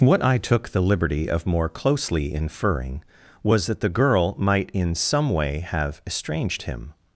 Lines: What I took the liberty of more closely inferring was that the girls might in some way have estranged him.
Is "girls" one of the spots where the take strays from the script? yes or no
yes